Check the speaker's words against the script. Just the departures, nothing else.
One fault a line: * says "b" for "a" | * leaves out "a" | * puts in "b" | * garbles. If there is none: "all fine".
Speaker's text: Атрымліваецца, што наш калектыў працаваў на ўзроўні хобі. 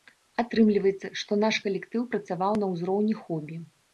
all fine